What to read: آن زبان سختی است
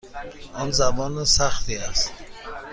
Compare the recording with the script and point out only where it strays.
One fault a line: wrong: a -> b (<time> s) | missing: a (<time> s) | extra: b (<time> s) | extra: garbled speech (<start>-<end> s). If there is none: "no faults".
no faults